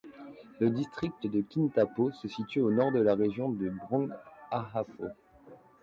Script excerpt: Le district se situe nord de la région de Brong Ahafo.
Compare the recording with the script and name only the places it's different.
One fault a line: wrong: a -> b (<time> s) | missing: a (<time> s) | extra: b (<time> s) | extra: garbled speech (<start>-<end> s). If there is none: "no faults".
extra: de Kintampo (1.2 s)
extra: au (2.6 s)